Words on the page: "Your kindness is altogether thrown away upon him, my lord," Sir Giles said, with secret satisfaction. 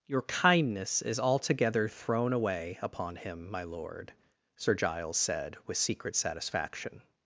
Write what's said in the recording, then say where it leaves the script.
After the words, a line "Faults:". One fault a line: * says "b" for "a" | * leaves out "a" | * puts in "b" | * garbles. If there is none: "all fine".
"Your kindness is altogether thrown away upon him, my lord," Sir Giles said, with secret satisfaction.
Faults:
all fine